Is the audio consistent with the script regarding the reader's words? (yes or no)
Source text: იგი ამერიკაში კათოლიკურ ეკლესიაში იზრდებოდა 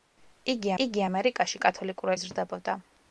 no